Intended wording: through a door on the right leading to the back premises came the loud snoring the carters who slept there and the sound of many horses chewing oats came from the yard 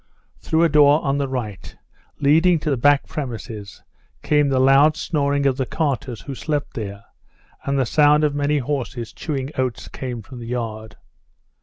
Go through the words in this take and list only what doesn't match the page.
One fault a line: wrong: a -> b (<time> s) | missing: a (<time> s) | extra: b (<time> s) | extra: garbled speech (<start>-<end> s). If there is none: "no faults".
extra: of (5.4 s)